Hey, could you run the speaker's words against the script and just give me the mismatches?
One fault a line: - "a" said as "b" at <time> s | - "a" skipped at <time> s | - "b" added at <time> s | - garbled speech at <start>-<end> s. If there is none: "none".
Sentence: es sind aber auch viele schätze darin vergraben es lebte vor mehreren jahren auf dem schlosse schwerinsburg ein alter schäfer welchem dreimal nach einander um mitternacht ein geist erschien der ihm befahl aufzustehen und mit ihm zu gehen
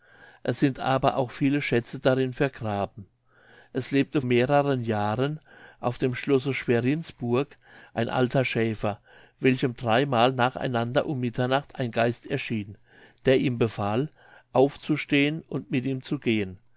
- "vor" skipped at 4.2 s